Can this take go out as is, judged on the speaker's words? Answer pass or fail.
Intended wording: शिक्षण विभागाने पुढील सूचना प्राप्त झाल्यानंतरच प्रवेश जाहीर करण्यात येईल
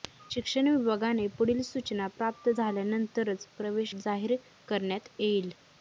pass